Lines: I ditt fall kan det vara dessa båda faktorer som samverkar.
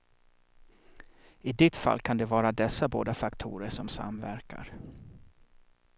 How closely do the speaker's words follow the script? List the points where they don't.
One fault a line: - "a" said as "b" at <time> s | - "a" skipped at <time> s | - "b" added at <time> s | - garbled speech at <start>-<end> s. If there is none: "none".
none